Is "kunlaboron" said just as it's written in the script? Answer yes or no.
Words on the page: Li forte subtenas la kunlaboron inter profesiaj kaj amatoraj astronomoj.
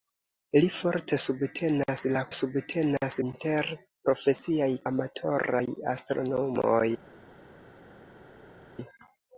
no